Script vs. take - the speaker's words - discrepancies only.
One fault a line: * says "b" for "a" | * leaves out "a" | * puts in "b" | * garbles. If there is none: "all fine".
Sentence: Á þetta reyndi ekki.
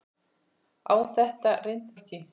all fine